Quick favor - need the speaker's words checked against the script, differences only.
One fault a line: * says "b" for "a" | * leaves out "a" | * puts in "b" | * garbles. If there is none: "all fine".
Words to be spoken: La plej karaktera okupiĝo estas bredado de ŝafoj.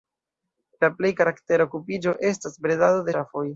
* leaves out "de"